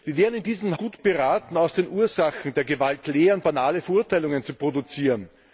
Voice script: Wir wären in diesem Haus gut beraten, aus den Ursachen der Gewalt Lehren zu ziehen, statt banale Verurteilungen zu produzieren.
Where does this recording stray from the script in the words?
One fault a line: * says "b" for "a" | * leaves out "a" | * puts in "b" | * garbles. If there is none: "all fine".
* leaves out "Haus"
* leaves out "zu ziehen statt"